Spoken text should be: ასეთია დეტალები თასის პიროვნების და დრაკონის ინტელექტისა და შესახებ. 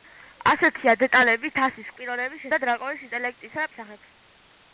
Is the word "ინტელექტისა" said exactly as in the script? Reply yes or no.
yes